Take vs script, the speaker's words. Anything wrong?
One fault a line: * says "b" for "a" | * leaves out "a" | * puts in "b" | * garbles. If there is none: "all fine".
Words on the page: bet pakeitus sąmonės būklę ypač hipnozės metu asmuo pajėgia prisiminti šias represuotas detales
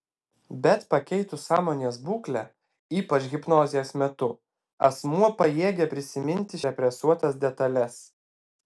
* leaves out "šias"